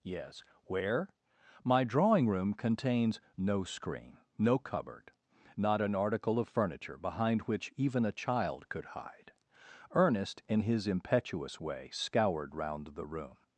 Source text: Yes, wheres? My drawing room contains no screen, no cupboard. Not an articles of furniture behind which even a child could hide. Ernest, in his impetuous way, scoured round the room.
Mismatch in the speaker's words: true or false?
true